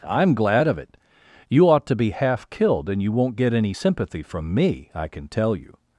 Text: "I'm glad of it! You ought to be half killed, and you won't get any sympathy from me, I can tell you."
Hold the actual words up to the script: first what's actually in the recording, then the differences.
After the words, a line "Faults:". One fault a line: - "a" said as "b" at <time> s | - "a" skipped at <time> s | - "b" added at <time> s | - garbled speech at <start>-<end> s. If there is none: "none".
"I'm glad of it! You ought to be half killed, and you won't get any sympathy from me, I can tell you."
Faults:
none